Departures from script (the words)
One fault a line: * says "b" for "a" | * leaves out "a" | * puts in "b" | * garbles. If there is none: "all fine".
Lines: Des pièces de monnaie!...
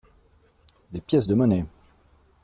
all fine